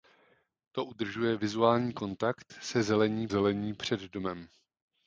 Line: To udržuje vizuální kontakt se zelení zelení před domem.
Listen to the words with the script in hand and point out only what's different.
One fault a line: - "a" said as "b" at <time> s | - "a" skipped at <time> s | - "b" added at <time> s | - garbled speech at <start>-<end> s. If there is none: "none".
none